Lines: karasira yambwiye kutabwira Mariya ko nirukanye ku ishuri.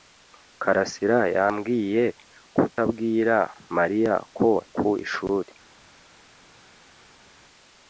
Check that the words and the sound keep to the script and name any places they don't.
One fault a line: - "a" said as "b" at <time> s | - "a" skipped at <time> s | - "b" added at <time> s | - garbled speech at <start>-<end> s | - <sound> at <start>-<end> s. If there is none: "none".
- "nirukanye" skipped at 4.5 s